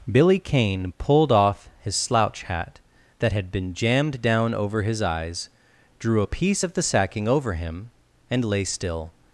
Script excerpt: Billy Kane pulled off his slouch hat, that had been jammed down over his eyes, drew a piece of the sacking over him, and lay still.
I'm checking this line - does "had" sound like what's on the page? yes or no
yes